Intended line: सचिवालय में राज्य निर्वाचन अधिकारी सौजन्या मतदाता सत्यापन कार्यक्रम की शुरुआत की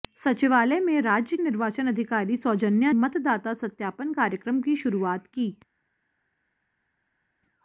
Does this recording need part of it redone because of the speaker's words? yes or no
no